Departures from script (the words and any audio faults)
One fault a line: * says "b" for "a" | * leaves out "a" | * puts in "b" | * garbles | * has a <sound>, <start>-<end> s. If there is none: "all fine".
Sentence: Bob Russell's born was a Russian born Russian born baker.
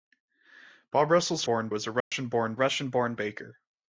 * has a dropout, 2.0-2.1 s